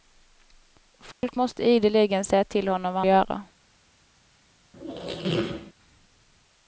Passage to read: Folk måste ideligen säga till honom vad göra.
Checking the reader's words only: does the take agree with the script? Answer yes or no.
yes